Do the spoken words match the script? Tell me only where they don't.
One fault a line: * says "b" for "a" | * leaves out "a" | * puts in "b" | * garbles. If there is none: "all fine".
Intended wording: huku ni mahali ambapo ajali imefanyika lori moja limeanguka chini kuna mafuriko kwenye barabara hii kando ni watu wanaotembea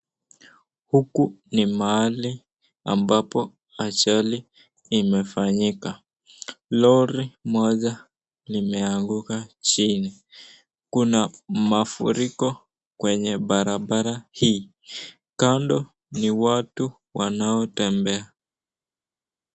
all fine